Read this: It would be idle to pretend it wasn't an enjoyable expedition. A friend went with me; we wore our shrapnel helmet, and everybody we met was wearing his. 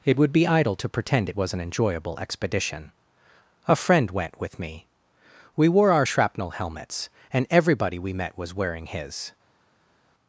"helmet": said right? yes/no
no